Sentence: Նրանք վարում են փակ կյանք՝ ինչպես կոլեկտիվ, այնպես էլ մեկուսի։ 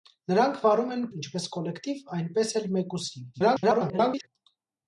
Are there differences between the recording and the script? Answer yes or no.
yes